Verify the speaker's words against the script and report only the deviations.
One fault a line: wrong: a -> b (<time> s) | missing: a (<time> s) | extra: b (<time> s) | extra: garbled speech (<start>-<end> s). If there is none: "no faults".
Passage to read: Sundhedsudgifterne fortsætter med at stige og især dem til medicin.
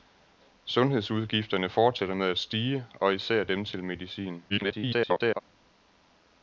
extra: garbled speech (4.5-5.4 s)